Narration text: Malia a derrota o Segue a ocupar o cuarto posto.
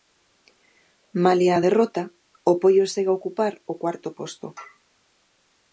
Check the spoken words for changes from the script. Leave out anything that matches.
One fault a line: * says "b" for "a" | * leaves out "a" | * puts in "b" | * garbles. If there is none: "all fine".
* puts in "Poio"